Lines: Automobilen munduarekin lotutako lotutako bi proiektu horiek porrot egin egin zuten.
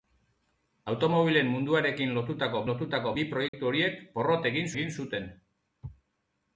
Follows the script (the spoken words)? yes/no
yes